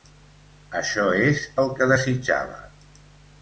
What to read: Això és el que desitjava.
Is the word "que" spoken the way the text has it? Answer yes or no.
yes